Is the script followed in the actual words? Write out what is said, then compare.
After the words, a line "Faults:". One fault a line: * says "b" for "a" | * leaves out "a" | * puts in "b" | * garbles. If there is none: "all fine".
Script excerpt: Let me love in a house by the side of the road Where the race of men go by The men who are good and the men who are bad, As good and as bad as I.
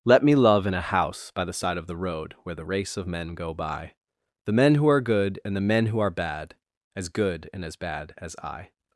Let me love in a house by the side of the road Where the race of men go by The men who are good and the men who are bad, As good and as bad as I.
Faults:
all fine